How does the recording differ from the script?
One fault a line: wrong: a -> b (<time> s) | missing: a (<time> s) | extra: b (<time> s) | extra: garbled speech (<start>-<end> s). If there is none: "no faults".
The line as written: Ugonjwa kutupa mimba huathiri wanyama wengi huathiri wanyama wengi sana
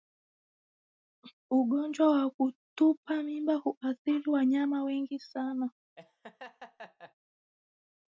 extra: wa (2.1 s)
missing: huathiri wanyama wengi (5.2 s)